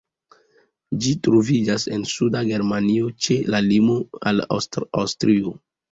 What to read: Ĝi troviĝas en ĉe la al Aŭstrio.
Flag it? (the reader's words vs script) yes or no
yes